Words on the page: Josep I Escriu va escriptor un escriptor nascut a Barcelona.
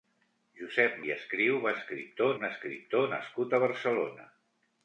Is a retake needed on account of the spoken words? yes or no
no